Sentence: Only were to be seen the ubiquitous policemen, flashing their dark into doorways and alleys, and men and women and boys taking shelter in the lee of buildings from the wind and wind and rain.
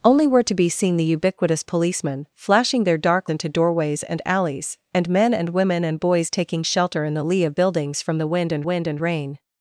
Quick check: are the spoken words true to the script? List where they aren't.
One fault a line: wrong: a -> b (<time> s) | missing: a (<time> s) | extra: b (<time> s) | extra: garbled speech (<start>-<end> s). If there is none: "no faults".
no faults